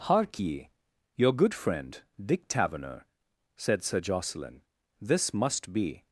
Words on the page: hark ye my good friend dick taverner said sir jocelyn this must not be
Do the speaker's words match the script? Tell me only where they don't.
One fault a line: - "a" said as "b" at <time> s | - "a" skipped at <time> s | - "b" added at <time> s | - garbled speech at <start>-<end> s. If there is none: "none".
- "my" said as "your" at 1.2 s
- "not" skipped at 5.7 s